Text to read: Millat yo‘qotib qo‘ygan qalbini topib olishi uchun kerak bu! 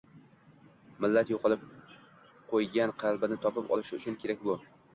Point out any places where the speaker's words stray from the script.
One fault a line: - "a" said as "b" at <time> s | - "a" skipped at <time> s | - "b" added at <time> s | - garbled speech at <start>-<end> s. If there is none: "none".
none